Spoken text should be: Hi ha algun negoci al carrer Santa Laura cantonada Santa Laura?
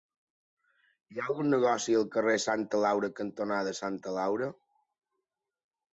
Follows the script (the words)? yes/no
yes